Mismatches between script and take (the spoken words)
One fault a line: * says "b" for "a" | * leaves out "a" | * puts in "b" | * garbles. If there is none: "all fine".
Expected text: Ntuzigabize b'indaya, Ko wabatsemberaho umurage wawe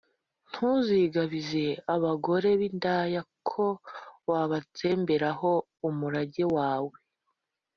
* puts in "abagore"